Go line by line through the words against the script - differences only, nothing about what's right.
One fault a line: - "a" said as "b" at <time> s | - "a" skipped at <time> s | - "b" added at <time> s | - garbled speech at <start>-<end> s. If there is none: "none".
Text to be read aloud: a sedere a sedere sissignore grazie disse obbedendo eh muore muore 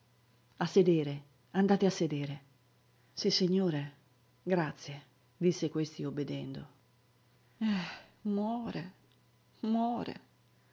- "andate" added at 1.5 s
- "questi" added at 5.7 s